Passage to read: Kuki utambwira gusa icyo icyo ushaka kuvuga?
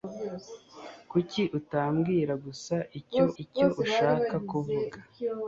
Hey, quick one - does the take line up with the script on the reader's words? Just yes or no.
yes